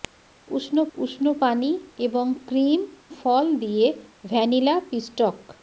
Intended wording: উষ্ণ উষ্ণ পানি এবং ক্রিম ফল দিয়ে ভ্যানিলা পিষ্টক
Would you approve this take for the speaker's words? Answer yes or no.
yes